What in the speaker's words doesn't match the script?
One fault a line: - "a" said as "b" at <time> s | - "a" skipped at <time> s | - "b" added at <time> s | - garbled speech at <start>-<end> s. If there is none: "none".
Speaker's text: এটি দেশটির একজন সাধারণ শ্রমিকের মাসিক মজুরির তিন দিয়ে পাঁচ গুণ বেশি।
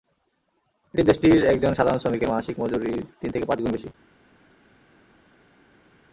- "দিয়ে" said as "থেকে" at 3.3 s